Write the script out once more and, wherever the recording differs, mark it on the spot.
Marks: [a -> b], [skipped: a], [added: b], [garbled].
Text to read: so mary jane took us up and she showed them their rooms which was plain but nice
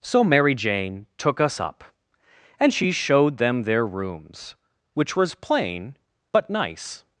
so mary jane took us up and she showed them their rooms which was plain but nice